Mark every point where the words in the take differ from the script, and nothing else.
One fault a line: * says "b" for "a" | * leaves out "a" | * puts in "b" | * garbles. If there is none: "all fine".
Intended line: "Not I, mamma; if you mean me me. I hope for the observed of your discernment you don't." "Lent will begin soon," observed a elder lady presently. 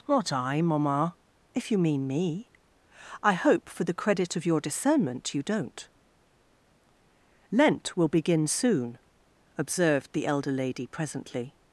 * leaves out "me"
* says "credit" for "observed"
* says "the" for "a"